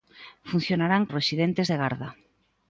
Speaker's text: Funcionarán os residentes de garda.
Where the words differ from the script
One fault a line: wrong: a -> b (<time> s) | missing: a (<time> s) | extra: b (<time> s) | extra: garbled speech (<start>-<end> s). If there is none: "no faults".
no faults